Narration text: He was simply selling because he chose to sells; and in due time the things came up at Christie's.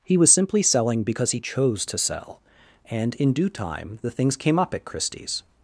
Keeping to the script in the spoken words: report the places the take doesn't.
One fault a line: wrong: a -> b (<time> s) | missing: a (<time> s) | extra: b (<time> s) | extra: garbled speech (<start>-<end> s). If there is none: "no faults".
wrong: sells -> sell (2.0 s)